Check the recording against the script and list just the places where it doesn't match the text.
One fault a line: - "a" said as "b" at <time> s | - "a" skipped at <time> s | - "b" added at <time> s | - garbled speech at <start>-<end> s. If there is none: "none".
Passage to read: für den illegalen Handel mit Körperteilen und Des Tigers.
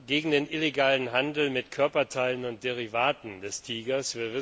- "für" said as "gegen" at 0.1 s
- "Derivaten" added at 2.6 s